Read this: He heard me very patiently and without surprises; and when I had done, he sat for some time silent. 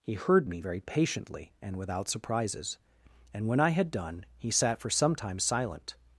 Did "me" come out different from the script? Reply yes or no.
no